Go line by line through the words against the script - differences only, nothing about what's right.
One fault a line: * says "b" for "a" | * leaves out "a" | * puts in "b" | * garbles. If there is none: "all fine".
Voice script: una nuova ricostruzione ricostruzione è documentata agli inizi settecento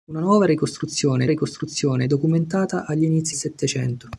all fine